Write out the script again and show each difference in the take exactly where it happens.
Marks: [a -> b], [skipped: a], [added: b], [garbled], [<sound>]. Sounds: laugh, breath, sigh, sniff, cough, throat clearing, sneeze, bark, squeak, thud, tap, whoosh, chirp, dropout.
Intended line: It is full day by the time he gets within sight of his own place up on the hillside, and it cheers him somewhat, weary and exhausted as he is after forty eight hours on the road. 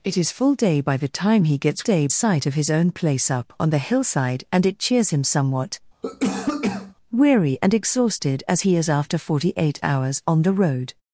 It is full day by the time he gets [within -> day] sight of his own place up on the hillside, and it cheers him somewhat, [cough] weary and exhausted as he is after forty eight hours on the road.